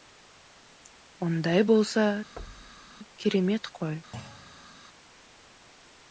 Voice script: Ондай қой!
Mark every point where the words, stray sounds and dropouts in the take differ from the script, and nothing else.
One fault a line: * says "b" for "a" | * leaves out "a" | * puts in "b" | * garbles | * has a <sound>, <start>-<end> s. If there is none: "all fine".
* puts in "болса керемет"
* has a thud, 2.4-2.9 s
* has a thud, 4.1-4.7 s